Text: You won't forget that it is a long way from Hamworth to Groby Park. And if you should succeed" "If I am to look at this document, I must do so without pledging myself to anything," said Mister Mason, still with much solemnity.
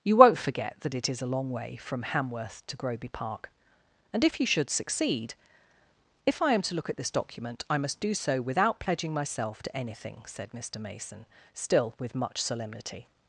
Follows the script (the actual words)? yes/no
yes